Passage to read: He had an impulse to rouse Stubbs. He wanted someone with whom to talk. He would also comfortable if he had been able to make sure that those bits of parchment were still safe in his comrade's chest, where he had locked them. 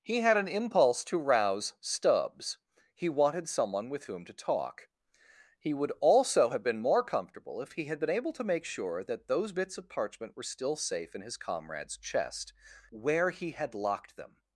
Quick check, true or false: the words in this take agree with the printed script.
false